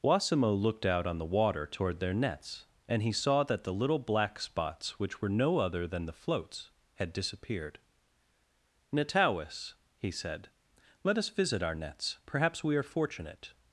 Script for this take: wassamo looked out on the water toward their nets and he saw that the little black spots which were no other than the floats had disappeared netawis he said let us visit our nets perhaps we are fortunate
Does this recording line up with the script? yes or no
yes